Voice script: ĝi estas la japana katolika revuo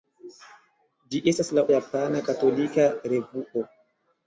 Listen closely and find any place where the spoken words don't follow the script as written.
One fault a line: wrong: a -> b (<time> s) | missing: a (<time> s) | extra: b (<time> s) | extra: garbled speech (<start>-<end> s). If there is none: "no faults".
no faults